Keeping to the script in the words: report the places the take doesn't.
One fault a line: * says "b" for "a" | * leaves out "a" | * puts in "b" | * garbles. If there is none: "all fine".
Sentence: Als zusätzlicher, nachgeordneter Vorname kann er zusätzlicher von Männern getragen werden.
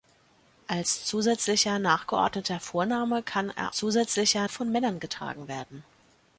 all fine